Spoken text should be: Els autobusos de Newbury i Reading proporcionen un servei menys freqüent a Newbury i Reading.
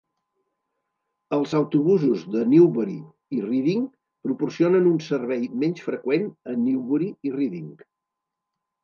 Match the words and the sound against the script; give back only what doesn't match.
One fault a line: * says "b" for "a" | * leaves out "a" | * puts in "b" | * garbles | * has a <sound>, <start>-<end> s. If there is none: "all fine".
all fine